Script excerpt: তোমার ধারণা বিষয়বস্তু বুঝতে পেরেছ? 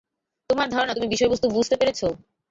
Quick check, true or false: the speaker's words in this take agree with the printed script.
false